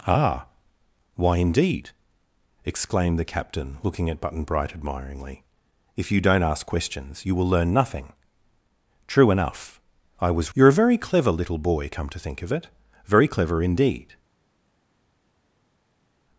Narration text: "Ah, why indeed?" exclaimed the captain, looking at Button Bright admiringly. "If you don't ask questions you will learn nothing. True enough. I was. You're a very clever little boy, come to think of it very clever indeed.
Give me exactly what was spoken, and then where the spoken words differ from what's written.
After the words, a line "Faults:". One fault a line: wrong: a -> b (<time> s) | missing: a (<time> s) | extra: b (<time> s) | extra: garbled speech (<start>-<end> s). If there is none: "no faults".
"Ah, why indeed?" exclaimed the captain, looking at Button Bright admiringly. "If you don't ask questions you will learn nothing. True enough. I was. You're a very clever little boy, come to think of it very clever indeed.
Faults:
no faults